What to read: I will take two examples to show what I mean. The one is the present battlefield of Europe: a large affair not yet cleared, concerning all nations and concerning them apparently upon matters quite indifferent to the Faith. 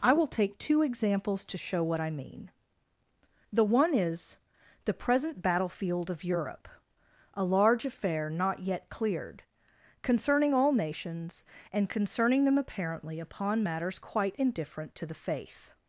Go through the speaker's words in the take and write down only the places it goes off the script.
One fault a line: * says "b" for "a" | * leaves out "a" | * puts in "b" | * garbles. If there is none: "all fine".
all fine